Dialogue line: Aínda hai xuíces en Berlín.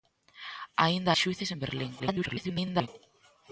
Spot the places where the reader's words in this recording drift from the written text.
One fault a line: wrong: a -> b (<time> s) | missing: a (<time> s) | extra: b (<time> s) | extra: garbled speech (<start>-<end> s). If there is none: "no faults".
missing: hai (1.1 s)
extra: garbled speech (2.0-2.9 s)